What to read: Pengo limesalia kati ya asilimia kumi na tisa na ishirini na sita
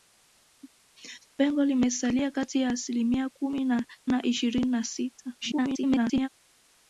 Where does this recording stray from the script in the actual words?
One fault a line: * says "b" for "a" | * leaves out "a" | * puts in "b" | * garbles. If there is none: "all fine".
* leaves out "tisa"
* garbles